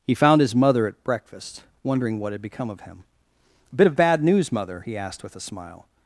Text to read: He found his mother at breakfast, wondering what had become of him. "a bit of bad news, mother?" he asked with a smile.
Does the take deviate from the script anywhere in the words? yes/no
no